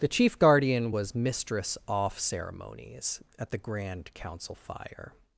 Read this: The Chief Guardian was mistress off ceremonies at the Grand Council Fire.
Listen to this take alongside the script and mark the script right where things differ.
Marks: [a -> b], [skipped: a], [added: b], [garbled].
The Chief Guardian was mistress off ceremonies at the Grand Council Fire.